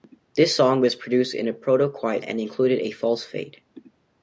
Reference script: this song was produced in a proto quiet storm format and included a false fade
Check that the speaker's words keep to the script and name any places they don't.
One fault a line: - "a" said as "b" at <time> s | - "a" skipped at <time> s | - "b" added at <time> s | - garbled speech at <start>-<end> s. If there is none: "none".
- "storm format" skipped at 2.2 s